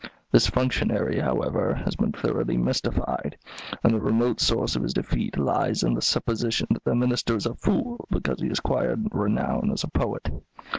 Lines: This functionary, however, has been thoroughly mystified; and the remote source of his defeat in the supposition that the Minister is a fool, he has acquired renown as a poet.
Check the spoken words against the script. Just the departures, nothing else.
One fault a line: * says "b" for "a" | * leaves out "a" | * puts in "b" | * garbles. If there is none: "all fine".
* puts in "lies"
* puts in "because"